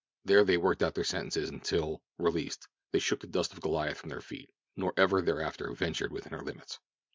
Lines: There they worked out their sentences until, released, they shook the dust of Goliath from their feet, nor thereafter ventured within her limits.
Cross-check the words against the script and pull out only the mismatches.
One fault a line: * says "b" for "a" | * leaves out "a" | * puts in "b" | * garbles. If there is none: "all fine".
* puts in "ever"